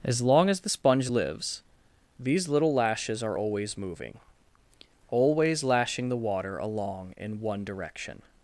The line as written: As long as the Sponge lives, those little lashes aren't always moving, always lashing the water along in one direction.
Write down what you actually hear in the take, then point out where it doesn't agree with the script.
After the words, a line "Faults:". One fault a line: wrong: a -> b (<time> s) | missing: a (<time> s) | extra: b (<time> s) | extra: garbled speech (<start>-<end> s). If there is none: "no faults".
As long as the Sponge lives, these little lashes are always moving, always lashing the water along in one direction.
Faults:
wrong: those -> these (2.2 s)
wrong: aren't -> are (3.2 s)